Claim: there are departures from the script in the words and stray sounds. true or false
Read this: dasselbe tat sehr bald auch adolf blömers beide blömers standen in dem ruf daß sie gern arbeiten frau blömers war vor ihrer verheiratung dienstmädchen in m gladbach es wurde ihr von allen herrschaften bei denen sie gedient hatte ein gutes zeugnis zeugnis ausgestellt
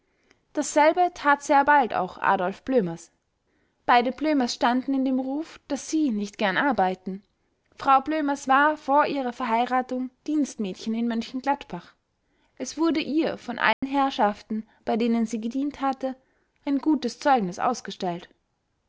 true